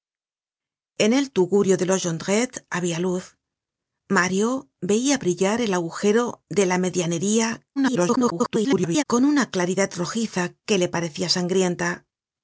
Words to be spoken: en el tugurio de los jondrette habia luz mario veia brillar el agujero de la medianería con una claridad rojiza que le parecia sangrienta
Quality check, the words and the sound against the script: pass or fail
fail